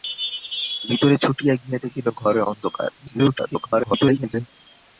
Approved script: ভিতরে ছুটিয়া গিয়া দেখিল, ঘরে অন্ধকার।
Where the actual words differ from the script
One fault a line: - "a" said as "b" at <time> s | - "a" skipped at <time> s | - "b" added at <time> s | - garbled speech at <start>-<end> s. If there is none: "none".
- garbled speech at 3.0-4.5 s